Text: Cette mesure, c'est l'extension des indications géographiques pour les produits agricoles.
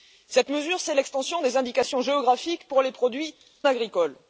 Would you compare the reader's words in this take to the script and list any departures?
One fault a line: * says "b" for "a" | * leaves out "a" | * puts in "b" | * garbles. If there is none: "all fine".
all fine